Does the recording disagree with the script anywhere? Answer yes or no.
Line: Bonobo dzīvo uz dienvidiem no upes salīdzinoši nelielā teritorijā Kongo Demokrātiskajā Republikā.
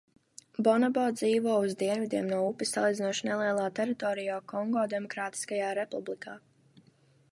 no